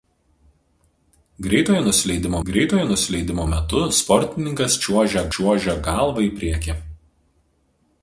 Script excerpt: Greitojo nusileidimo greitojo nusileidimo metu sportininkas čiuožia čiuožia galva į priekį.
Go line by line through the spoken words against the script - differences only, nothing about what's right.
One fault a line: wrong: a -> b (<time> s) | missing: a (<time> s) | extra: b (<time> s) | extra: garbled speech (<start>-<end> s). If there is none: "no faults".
no faults